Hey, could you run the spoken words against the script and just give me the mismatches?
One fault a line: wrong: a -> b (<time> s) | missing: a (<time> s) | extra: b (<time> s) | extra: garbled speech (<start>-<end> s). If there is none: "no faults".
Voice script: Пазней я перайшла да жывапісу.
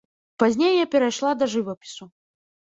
no faults